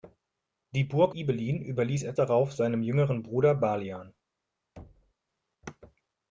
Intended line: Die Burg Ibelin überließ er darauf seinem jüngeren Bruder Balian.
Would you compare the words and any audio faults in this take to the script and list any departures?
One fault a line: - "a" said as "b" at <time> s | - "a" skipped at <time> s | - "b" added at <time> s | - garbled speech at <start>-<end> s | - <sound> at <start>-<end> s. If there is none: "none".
- thud at 4.8-5.1 s